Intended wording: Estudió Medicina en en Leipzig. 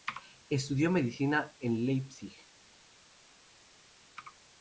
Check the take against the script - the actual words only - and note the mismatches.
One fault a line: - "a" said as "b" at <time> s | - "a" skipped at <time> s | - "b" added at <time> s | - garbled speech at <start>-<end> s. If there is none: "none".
- "en" skipped at 1.8 s